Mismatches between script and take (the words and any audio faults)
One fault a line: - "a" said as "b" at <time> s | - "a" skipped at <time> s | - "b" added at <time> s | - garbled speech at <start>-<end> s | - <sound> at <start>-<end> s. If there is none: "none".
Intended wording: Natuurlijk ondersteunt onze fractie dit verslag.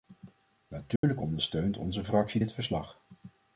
- dropout at 1.0-1.0 s